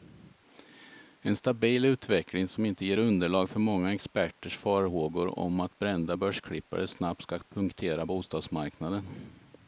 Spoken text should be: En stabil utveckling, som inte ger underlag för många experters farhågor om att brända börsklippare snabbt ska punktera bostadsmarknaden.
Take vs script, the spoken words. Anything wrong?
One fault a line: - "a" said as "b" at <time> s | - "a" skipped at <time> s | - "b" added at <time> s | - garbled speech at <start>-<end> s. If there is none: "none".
none